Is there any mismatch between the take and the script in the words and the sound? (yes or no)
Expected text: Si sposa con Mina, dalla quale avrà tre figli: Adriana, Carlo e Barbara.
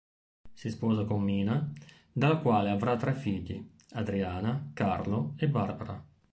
no